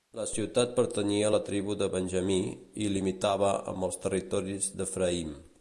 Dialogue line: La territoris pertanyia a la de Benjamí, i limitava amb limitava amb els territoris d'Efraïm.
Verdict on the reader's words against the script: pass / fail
fail